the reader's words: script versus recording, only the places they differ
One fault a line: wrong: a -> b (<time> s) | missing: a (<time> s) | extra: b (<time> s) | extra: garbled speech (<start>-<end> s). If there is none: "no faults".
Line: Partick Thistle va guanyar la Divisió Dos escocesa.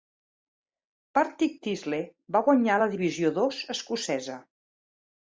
no faults